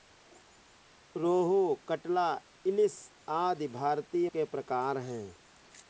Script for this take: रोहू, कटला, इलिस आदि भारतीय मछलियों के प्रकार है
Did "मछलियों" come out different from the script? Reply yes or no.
yes